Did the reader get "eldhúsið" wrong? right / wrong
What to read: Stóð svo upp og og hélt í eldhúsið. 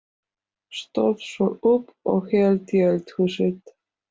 right